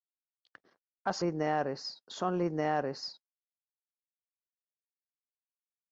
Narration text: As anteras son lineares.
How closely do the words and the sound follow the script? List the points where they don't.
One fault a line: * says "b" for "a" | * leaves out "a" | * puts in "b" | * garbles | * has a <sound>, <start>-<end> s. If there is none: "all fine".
* says "lineares" for "anteras"